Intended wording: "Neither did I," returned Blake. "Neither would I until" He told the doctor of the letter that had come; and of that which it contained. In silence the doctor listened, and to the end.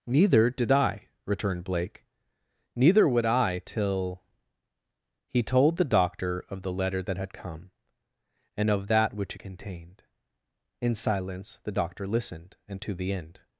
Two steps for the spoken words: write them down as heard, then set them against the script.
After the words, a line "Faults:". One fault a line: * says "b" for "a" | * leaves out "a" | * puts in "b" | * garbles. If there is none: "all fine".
"Neither did I," returned Blake. "Neither would I till" He told the doctor of the letter that had come; and of that which it contained. In silence the doctor listened, and to the end.
Faults:
* says "till" for "until"